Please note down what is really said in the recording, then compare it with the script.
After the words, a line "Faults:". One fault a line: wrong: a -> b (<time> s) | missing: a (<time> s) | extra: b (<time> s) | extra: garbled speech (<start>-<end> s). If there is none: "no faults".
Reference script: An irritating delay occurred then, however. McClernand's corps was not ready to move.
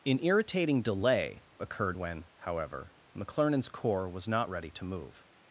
An irritating delay occurred when, however. McClernand's corps was not ready to move.
Faults:
wrong: then -> when (2.0 s)